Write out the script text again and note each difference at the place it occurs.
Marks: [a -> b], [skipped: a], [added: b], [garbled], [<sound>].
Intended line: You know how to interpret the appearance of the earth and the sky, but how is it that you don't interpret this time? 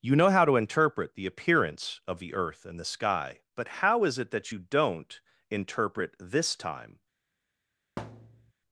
You know how to interpret the appearance of the earth and the sky, but how is it that you don't interpret this time? [thud]